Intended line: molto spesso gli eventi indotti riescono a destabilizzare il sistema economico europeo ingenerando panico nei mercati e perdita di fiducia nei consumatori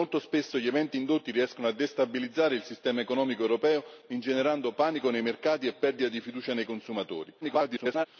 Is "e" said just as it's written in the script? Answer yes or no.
yes